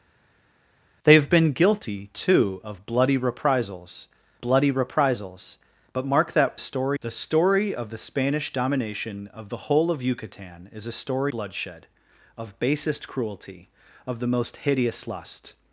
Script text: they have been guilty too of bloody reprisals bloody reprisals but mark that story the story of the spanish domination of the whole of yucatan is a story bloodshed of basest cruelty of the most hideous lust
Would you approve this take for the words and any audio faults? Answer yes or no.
yes